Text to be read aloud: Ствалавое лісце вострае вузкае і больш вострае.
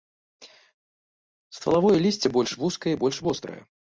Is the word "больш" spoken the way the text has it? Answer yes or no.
yes